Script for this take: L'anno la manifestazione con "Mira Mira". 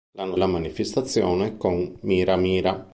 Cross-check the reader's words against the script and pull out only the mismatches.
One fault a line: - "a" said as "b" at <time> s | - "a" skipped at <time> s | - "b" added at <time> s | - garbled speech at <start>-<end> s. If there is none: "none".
none